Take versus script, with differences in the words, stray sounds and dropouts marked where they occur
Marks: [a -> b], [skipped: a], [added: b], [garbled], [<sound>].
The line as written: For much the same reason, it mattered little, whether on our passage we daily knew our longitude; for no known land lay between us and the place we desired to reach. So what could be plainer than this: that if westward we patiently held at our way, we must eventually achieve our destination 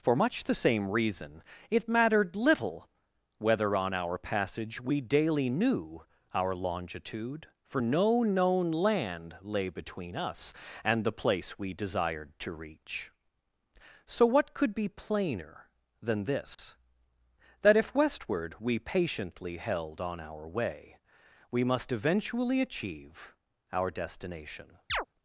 For much the same reason, it mattered little, whether on our passage we daily knew our longitude; for no known land lay between us and the place we desired to reach. So what could be plainer than this: [dropout] that if westward we patiently held [at -> on] our way, we must eventually achieve our destination [chirp]